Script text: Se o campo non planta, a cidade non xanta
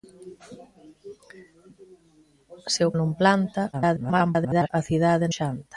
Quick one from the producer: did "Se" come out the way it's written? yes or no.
yes